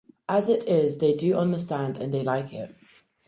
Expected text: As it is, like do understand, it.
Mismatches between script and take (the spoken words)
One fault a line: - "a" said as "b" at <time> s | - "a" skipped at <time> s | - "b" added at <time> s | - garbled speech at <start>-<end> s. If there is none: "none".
- "like" said as "they" at 1.0 s
- "and they like" added at 2.0 s